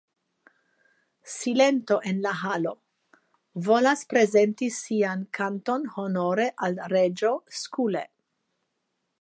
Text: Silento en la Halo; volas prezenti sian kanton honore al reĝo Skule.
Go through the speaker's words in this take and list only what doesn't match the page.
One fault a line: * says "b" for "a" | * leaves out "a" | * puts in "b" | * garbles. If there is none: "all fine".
all fine